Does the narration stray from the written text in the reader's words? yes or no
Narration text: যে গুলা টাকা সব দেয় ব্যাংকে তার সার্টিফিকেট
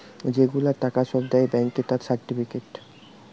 no